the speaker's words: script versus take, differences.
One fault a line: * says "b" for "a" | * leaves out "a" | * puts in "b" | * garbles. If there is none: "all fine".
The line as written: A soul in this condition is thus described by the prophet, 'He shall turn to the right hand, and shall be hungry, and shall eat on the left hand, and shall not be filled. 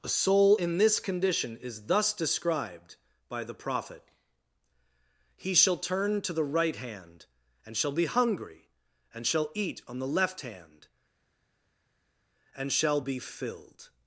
* leaves out "not"